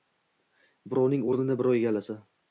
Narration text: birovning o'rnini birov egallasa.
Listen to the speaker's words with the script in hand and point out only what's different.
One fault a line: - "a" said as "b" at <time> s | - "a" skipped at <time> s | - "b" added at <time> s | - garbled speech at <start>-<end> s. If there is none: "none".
none